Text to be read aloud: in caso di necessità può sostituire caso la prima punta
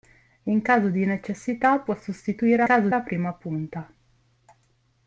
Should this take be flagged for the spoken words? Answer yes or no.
no